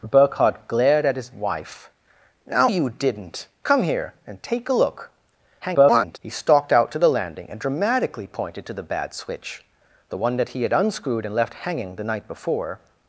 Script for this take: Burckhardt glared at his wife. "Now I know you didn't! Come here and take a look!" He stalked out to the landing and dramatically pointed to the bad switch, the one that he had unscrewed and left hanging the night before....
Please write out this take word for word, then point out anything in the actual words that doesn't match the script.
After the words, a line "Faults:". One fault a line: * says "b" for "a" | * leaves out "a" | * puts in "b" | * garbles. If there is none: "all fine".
Burckhardt glared at his wife. "Now you didn't! Come here and take a look!" [garbled] He stalked out to the landing and dramatically pointed to the bad switch, the one that he had unscrewed and left hanging the night before....
Faults:
* leaves out "I know"
* garbles